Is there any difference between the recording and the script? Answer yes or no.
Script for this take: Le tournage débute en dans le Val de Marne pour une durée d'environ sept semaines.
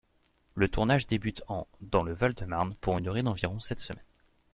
no